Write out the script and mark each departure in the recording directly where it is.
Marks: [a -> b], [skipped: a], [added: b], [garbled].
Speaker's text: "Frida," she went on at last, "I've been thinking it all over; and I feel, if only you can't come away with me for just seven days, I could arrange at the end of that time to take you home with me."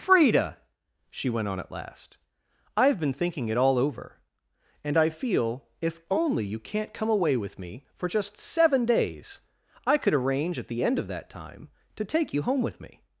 "Frida," she went on at last, "I've been thinking it all over; and I feel, if only you can't come away with me for just seven days, I could arrange at the end of that time to take you home with me."